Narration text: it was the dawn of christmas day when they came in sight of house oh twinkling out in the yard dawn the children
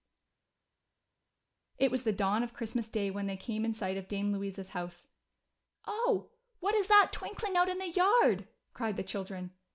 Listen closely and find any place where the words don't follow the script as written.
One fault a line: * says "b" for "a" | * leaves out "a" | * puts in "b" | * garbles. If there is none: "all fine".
* puts in "dame louisa's"
* puts in "what is that"
* says "cried" for "dawn"